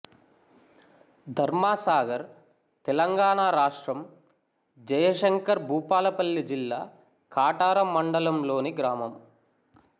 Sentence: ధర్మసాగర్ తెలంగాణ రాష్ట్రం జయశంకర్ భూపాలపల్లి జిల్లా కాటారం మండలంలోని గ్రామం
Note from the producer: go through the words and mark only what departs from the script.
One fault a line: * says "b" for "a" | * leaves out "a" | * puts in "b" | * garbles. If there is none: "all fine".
all fine